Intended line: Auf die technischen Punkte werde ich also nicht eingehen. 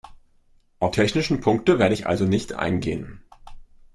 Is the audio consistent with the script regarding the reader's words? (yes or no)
no